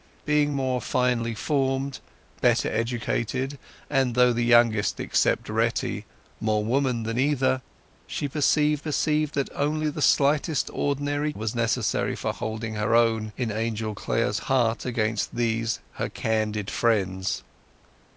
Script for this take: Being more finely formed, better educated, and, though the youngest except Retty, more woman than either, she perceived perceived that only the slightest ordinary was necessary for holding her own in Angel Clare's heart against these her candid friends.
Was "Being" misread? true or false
false